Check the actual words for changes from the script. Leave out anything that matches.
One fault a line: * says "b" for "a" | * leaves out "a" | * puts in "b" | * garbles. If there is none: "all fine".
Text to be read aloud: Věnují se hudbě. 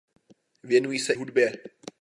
all fine